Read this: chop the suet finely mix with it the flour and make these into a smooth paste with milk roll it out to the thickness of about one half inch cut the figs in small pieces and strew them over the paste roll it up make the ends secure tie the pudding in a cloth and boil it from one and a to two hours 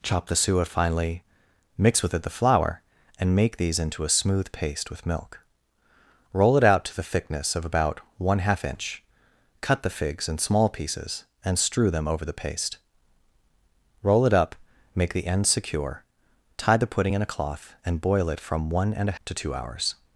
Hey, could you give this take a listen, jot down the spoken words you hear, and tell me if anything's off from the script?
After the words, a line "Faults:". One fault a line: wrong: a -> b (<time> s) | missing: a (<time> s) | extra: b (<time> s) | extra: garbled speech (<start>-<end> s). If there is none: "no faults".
chop the suet finely mix with it the flour and make these into a smooth paste with milk roll it out to the thickness of about one half inch cut the figs in small pieces and strew them over the paste roll it up make the ends secure tie the pudding in a cloth and boil it from one and a to two hours
Faults:
no faults